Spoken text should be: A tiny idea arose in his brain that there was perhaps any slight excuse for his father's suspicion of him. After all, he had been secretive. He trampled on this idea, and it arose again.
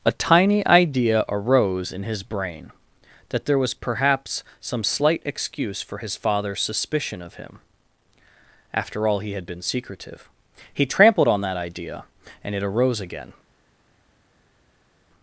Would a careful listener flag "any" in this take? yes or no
yes